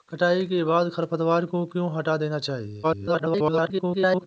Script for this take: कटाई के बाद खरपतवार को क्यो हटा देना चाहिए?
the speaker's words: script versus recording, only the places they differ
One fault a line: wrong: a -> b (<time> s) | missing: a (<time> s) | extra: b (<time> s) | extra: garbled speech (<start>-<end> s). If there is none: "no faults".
extra: garbled speech (2.8-4.3 s)